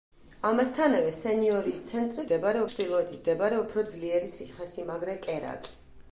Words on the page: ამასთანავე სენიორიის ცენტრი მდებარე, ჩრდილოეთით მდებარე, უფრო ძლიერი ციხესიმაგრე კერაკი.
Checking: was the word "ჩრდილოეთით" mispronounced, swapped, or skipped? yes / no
no